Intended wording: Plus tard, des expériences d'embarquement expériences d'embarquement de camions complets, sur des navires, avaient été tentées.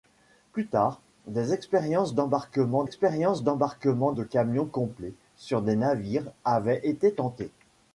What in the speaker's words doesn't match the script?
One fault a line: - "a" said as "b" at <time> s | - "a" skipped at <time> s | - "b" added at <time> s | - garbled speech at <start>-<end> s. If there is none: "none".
none